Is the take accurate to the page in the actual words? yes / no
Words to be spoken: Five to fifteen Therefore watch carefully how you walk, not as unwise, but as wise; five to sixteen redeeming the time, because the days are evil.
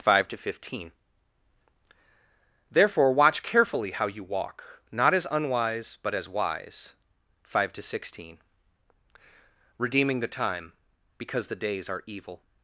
yes